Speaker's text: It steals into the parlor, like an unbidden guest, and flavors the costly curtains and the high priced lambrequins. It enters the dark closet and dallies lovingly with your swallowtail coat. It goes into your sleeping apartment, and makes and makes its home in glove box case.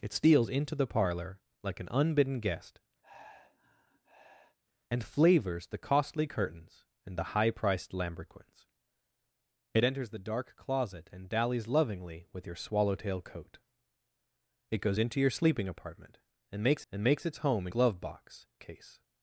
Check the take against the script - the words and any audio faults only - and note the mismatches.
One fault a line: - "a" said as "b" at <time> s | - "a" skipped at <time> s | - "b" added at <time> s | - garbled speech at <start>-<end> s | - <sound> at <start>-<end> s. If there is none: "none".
- sigh at 3.0-4.6 s